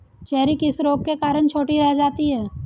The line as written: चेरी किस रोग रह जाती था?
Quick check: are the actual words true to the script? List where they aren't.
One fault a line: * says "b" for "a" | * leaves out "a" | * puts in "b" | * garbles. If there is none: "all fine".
* puts in "के कारण छोटी"
* says "है" for "था"